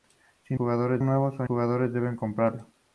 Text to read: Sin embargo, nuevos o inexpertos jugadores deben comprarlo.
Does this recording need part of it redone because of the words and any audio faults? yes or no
yes